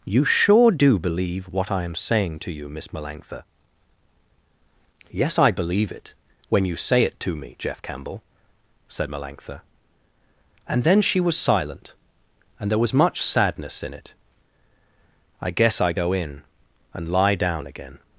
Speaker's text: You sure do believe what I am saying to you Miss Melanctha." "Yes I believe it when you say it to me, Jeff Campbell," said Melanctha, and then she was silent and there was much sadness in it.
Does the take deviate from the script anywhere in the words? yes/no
yes